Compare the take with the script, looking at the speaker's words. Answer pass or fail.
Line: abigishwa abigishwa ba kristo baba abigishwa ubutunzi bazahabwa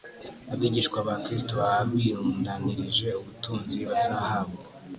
fail